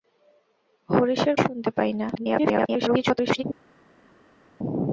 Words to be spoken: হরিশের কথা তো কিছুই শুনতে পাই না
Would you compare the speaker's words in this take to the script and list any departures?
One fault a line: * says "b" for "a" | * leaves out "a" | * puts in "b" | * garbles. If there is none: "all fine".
* leaves out "কথা তো কিছুই"
* garbles